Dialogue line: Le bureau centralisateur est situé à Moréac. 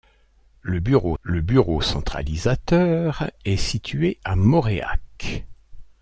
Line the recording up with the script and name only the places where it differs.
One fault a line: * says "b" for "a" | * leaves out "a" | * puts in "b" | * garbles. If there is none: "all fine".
* puts in "le bureau"